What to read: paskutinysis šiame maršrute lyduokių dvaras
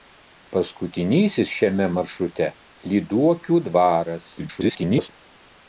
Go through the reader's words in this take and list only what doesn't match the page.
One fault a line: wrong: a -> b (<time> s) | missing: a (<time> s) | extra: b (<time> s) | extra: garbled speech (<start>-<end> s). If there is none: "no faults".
extra: garbled speech (4.4-5.1 s)